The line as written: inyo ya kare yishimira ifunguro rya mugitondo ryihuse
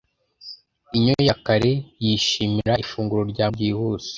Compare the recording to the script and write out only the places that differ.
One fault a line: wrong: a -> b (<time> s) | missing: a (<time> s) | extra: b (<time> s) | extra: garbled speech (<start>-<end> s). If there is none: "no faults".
missing: mugitondo (3.5 s)